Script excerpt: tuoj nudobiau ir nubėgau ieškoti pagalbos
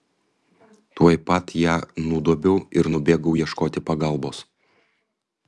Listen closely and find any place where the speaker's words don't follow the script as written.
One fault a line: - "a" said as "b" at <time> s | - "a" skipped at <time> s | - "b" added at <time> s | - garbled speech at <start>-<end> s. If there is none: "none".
- "pat ją" added at 1.3 s